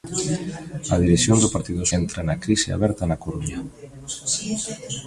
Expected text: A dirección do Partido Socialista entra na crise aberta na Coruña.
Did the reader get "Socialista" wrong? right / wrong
wrong